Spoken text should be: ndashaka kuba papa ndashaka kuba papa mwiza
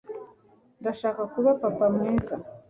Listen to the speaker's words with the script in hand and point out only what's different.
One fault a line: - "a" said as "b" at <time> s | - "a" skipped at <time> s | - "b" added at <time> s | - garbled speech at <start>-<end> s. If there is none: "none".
- "ndashaka kuba papa" skipped at 1.8 s